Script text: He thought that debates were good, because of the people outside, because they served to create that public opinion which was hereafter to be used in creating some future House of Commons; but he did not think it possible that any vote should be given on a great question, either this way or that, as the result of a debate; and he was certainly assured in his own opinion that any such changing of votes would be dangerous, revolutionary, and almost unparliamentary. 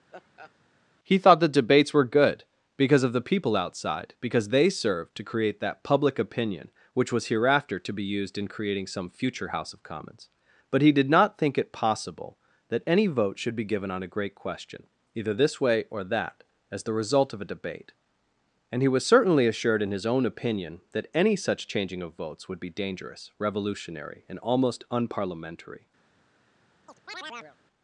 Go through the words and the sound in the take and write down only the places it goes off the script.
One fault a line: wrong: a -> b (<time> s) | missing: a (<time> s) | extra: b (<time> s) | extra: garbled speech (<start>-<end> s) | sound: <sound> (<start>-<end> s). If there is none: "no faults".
sound: laugh (0.1-0.5 s)
wrong: that -> the (1.4 s)
sound: chirp (26.9-27.6 s)